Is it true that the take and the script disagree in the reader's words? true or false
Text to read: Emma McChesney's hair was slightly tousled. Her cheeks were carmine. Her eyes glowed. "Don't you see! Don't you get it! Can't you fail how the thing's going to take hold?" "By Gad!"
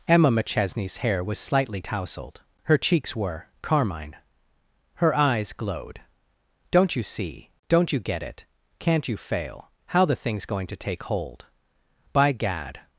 false